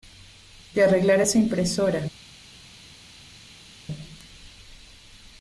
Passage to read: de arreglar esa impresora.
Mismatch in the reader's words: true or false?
false